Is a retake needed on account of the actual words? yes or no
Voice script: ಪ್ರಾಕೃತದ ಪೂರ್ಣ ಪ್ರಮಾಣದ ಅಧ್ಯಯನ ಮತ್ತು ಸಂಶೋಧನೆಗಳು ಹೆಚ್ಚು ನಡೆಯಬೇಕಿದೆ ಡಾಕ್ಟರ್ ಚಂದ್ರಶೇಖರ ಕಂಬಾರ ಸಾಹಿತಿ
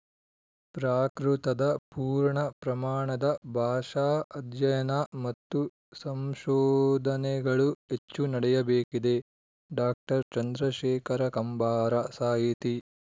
yes